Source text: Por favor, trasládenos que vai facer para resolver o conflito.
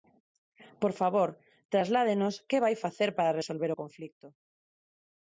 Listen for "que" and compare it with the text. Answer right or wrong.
right